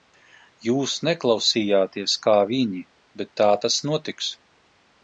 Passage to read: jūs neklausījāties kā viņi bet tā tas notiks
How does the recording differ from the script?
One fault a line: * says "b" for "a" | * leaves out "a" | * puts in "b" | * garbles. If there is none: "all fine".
all fine